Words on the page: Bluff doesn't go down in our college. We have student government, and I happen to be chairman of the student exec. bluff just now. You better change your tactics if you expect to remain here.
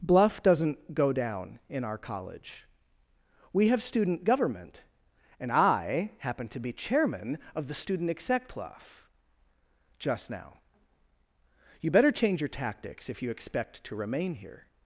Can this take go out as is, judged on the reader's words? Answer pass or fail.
pass